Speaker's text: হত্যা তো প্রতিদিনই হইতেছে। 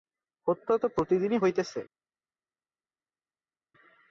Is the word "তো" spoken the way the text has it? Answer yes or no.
yes